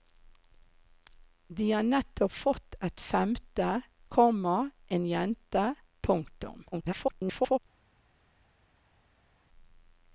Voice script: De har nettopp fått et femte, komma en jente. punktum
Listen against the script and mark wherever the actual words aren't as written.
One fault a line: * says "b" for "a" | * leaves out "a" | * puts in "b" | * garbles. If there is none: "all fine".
* garbles